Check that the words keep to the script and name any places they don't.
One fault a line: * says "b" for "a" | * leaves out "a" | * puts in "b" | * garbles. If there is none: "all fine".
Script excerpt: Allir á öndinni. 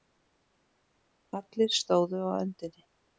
* puts in "stóðu"